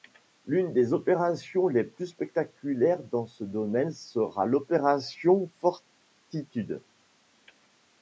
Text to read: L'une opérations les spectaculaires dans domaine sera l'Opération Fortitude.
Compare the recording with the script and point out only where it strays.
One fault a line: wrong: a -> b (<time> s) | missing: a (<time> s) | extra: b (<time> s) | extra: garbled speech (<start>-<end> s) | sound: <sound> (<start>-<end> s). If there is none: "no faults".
extra: des (0.7 s)
extra: plus (1.8 s)
extra: ce (3.3 s)